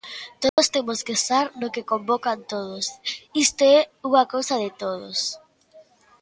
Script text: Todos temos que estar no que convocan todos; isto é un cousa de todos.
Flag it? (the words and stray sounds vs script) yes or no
yes